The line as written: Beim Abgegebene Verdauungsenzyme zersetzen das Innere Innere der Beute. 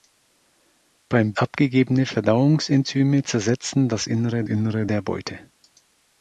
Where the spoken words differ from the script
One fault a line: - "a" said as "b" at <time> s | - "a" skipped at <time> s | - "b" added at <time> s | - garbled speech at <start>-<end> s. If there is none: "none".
none